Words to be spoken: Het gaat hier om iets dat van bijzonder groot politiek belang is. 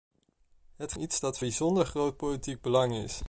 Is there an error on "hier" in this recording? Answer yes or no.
yes